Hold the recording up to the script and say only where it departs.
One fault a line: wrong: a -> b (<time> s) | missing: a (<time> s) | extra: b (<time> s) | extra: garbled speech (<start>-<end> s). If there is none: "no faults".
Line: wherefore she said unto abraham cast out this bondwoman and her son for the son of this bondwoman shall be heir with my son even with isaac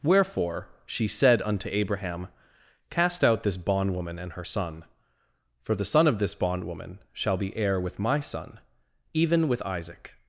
no faults